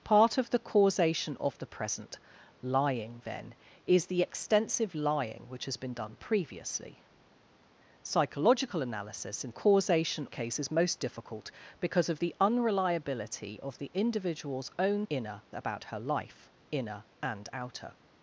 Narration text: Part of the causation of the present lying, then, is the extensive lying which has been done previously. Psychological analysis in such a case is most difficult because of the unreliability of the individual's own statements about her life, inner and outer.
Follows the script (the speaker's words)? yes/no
no